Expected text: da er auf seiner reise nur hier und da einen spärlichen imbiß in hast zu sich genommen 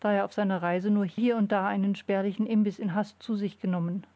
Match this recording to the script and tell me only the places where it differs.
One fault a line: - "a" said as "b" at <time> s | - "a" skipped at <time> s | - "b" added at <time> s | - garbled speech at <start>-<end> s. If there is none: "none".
none